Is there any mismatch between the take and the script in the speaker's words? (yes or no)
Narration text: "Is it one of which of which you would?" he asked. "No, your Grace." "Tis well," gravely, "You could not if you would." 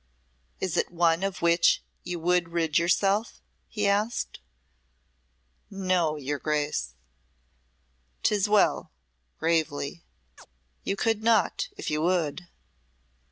yes